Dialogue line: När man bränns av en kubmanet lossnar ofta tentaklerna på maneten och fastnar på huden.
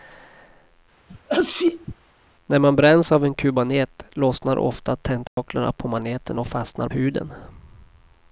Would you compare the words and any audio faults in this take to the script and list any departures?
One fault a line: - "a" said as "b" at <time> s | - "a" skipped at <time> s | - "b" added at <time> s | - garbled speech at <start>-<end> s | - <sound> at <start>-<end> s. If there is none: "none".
- sneeze at 1.1-2.0 s
- dropout at 5.3-5.4 s
- "på" skipped at 6.9 s